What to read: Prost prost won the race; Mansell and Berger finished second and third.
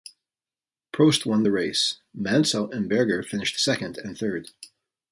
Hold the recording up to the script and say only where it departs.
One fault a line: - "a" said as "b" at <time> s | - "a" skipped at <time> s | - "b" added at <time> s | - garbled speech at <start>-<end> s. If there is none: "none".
- "prost" skipped at 1.3 s